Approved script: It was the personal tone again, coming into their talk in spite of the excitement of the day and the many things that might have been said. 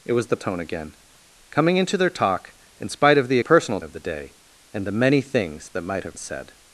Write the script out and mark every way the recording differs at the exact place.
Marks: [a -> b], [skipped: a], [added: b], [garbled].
It was the [skipped: personal] tone again, coming into their talk in spite of the [excitement -> personal] of the day and the many things that might have [skipped: been] said.